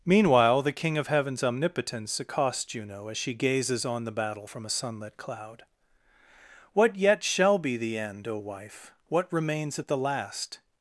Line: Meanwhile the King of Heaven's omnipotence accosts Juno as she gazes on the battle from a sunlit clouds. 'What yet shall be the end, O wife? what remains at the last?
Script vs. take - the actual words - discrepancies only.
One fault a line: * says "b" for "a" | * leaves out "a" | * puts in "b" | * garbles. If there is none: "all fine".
* says "cloud" for "clouds"